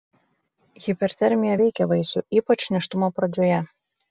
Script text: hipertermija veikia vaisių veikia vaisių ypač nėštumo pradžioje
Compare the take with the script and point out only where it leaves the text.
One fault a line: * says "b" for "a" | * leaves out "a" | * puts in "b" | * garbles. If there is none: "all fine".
* leaves out "veikia vaisių"